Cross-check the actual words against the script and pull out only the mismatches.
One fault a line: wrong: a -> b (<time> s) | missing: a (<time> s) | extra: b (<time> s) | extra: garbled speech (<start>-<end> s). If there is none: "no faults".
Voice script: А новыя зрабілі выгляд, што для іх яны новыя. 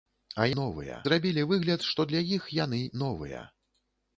no faults